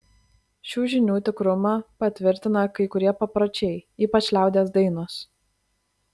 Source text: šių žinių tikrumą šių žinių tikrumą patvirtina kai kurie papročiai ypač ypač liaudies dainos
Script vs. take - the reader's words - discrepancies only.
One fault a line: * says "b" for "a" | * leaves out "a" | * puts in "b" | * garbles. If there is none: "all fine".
* leaves out "šių žinių tikrumą"
* leaves out "ypač"